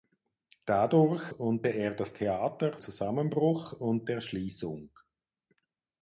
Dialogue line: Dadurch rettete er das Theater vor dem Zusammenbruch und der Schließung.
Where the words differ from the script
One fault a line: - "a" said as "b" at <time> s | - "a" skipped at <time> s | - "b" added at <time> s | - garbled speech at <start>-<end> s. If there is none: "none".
- "rettete" said as "und" at 1.3 s
- "vor dem" skipped at 2.8 s